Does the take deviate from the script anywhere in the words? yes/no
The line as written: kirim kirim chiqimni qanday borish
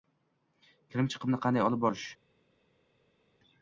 yes